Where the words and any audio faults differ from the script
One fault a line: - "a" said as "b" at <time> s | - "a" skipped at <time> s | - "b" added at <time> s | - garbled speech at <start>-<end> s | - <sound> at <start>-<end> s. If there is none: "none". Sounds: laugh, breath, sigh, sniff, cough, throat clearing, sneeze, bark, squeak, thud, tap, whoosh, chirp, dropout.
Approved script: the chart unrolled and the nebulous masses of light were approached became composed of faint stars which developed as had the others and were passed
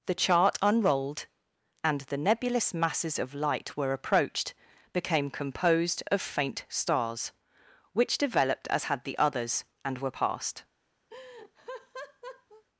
- laugh at 11.1-12.6 s